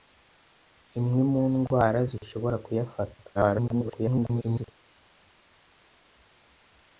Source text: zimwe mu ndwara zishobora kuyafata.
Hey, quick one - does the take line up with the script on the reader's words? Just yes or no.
no